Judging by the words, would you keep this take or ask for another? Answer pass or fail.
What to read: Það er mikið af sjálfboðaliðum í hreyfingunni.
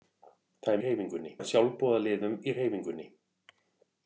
fail